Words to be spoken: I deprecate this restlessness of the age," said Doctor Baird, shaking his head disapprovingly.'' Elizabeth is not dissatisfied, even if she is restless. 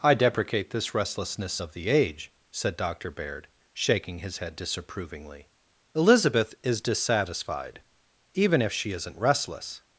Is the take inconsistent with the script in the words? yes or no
yes